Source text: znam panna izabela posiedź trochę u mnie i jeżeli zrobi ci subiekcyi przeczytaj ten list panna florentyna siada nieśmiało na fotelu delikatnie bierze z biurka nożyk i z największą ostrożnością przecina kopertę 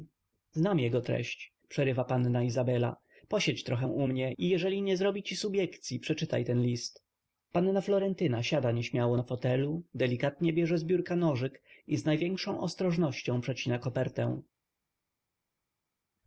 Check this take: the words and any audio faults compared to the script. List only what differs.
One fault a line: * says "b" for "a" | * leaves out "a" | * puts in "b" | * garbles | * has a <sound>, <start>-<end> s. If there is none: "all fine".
* puts in "jego treść przerywa"
* puts in "nie"